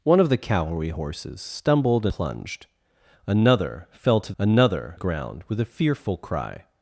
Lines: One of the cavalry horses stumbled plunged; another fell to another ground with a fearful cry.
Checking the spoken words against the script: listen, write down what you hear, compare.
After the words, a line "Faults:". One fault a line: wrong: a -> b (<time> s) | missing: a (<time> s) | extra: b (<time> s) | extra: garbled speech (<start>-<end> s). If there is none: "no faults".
One of the cavalry horses stumbled plunged; another fell to another ground with a fearful cry.
Faults:
no faults